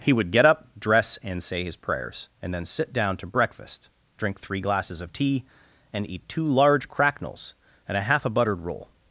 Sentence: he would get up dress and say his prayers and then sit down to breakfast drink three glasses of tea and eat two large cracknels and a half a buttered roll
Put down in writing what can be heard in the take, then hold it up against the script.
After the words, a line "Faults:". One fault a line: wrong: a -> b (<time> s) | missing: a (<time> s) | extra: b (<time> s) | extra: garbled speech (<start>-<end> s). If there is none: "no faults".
he would get up dress and say his prayers and then sit down to breakfast drink three glasses of tea and eat two large cracknels and a half a buttered roll
Faults:
no faults